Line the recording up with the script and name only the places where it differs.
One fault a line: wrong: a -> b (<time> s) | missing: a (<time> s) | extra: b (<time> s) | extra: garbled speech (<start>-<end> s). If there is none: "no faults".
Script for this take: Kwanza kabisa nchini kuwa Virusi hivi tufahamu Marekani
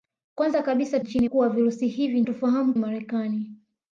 no faults